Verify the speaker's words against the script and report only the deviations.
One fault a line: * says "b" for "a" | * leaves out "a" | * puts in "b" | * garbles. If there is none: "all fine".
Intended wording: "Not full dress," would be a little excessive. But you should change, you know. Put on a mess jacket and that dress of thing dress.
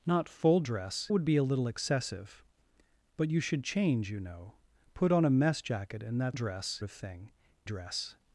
all fine